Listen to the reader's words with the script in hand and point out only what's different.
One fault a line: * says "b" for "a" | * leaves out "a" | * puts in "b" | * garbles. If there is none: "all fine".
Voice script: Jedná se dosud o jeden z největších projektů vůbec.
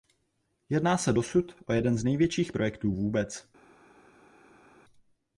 all fine